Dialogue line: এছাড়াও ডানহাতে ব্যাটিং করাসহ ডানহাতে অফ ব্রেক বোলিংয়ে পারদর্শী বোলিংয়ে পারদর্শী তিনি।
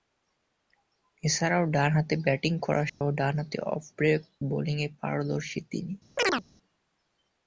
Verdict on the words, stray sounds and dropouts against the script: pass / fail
fail